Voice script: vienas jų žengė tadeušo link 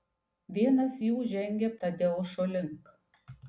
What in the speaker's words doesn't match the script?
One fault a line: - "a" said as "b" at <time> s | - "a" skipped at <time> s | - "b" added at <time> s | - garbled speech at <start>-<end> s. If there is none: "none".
none